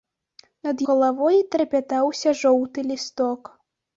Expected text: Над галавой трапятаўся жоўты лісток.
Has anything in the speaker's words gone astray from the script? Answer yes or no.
no